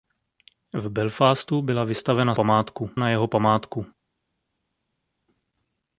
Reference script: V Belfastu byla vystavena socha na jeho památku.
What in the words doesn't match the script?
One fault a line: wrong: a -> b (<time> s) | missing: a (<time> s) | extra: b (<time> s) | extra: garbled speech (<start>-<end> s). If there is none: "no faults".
wrong: socha -> památku (2.3 s)